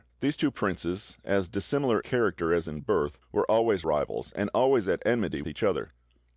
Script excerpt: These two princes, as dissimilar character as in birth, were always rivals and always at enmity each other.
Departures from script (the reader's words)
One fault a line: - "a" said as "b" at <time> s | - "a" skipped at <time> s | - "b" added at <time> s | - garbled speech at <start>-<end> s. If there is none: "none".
none